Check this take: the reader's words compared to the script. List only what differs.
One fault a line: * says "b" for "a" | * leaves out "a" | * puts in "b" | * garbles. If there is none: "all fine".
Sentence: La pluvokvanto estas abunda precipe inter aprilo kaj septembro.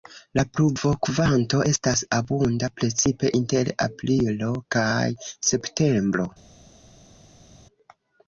all fine